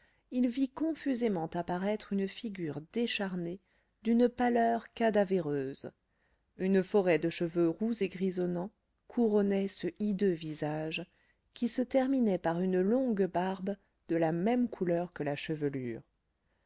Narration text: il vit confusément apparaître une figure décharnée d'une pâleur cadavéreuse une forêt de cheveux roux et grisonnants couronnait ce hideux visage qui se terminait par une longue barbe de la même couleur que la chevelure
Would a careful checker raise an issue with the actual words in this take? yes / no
no